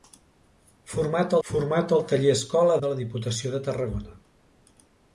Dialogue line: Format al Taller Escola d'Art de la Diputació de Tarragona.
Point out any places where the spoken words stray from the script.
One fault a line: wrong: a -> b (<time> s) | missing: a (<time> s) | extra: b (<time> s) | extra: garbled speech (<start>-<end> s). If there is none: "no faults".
extra: format (1.5 s)
missing: d'Art (2.8 s)